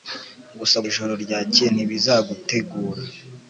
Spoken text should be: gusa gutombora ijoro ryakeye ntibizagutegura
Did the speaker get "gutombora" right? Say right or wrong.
wrong